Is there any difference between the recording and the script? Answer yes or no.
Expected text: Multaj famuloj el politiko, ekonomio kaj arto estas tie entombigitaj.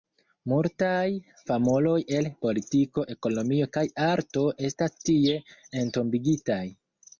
no